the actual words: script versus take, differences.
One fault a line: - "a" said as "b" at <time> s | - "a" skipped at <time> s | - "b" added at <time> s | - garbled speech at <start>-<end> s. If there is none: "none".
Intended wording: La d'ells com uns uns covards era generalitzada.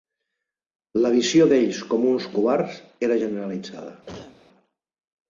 - "visió" added at 1.1 s
- "uns" skipped at 2.3 s